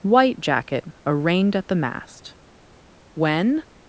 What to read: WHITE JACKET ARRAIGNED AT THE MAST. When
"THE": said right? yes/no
yes